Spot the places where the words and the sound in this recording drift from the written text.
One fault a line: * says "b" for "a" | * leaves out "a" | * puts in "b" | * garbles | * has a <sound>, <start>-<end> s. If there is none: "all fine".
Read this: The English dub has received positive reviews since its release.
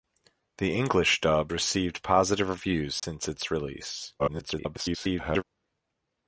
* leaves out "has"
* has a dropout, 3.0-3.0 s
* garbles